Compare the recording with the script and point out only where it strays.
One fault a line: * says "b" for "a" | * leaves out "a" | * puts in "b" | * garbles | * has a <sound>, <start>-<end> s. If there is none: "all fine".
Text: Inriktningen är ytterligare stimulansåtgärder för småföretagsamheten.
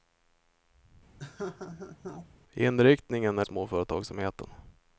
* has a laugh, 1.2-2.3 s
* leaves out "ytterligare stimulansåtgärder för"